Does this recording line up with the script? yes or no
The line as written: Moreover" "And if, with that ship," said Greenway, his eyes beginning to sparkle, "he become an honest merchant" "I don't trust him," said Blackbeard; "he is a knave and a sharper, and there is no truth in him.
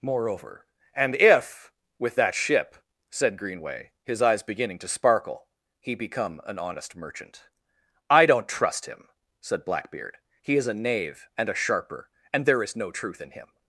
yes